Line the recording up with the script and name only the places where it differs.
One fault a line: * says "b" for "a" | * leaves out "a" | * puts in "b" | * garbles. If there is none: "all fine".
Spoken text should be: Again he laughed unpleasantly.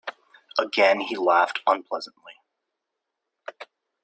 all fine